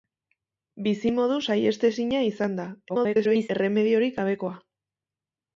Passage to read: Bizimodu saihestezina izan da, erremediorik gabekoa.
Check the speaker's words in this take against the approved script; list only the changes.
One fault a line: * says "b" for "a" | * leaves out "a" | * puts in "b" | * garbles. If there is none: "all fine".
* garbles